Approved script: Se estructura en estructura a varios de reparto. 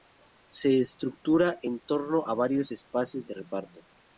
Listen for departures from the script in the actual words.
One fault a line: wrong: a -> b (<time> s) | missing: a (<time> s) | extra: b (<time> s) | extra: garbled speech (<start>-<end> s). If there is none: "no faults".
wrong: estructura -> torno (1.8 s)
extra: espacios (2.7 s)